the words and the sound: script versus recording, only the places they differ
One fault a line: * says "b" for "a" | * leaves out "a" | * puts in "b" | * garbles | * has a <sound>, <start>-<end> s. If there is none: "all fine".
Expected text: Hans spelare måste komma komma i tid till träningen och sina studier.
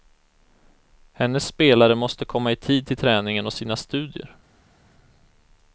* says "Hennes" for "Hans"
* leaves out "komma"